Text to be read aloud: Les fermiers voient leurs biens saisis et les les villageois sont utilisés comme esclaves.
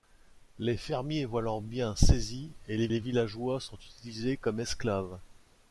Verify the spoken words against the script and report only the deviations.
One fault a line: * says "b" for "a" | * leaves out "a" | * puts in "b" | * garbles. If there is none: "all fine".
all fine